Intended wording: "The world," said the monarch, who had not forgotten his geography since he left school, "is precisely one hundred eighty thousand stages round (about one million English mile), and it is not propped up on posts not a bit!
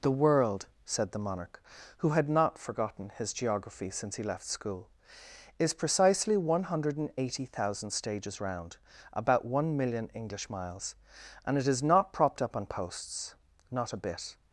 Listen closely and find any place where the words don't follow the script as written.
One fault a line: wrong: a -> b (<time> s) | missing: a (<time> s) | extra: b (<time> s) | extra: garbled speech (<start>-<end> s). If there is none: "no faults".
wrong: mile -> miles (10.5 s)